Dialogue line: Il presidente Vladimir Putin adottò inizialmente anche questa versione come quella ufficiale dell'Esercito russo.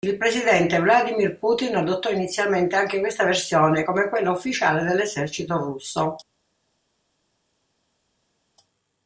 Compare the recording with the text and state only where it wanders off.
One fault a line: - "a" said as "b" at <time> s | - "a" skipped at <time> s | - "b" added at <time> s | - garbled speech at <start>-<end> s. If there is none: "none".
none